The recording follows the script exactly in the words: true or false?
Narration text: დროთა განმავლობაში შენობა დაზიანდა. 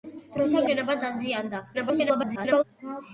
false